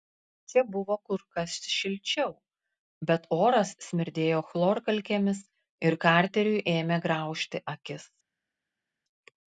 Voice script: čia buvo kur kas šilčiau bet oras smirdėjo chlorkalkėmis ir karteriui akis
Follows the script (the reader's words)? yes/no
no